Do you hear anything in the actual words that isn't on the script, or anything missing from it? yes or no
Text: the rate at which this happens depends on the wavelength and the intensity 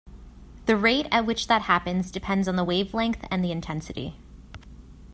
yes